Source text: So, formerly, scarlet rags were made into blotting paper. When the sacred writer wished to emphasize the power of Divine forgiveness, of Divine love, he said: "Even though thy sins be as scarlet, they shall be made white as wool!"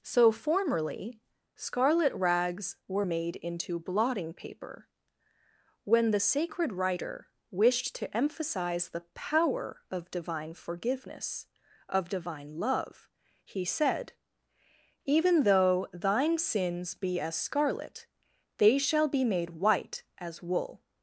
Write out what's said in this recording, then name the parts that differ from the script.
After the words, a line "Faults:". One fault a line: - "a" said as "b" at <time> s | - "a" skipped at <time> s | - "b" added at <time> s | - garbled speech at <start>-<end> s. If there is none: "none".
So, formerly, scarlet rags were made into blotting paper. When the sacred writer wished to emphasize the power of Divine forgiveness, of Divine love, he said: "Even though thine sins be as scarlet, they shall be made white as wool!"
Faults:
- "thy" said as "thine" at 15.9 s